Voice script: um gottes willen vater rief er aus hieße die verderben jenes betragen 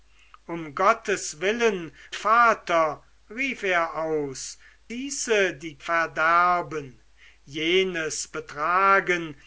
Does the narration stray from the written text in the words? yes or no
no